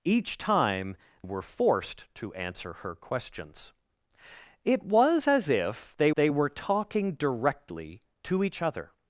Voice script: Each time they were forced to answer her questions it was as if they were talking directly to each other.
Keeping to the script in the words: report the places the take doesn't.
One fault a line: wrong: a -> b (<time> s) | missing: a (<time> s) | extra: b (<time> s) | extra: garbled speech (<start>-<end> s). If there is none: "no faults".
missing: they (0.9 s)
extra: they (6.2 s)